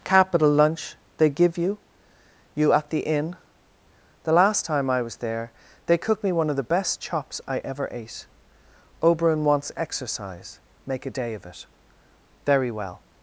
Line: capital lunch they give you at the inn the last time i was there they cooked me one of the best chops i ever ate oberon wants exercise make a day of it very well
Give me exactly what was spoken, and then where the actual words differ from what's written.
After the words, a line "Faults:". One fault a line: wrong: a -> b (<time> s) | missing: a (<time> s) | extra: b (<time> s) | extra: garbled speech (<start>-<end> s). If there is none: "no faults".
capital lunch they give you you at the inn the last time i was there they cooked me one of the best chops i ever ate oberon wants exercise make a day of it very well
Faults:
extra: you (2.5 s)